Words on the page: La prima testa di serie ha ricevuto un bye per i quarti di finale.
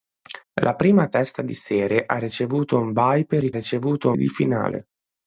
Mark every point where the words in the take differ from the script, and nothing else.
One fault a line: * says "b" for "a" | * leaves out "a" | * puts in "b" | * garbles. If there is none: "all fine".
* says "ricevuto" for "quarti"